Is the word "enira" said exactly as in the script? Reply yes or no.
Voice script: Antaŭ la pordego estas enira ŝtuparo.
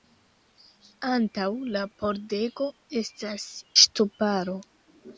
no